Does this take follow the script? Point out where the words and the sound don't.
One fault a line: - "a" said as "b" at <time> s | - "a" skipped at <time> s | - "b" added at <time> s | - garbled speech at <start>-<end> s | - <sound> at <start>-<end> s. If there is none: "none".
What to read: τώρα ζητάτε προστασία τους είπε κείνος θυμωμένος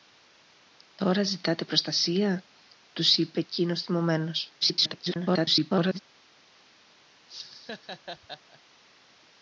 - garbled speech at 4.6-6.0 s
- laugh at 7.3-8.6 s